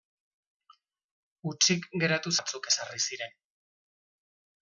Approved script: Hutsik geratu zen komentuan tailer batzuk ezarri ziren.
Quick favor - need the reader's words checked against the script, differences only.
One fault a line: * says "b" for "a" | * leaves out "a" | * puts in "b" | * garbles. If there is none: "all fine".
* leaves out "zen komentuan tailer"